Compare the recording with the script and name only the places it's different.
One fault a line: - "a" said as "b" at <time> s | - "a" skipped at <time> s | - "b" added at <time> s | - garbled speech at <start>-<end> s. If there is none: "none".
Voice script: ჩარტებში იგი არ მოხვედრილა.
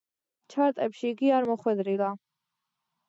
none